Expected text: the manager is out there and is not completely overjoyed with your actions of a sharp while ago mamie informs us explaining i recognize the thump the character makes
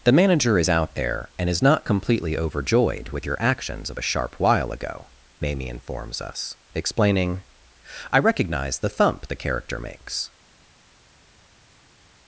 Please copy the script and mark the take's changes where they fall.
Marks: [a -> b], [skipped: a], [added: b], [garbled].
the manager is out there and is not completely overjoyed with your actions of a sharp while ago mamie informs us explaining i recognize the thump the character makes